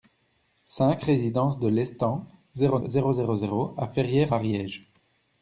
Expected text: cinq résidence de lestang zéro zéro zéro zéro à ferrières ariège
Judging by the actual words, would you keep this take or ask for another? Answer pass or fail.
pass